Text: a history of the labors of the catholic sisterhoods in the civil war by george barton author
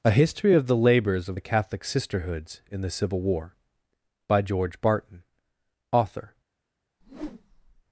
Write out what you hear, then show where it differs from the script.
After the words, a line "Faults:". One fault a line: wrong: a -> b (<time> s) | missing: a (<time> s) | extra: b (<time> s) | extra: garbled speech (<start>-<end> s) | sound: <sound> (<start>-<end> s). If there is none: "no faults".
a history of the labors of the catholic sisterhoods in the civil war by george barton author
Faults:
sound: whoosh (7.0-7.8 s)